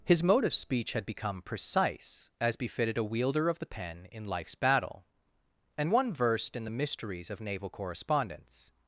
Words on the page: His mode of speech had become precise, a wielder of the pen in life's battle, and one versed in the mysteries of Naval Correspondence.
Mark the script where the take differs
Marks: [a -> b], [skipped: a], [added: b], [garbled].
His mode of speech had become precise, [added: as befitted] a wielder of the pen in life's battle, and one versed in the mysteries of Naval Correspondence.